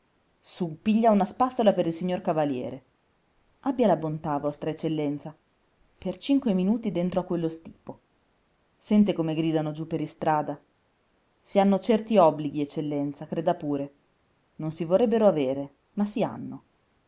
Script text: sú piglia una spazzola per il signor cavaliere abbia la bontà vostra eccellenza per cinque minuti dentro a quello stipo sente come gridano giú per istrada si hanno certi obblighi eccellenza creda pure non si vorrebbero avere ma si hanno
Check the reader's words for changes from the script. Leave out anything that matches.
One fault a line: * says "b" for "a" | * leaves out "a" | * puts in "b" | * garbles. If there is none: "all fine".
all fine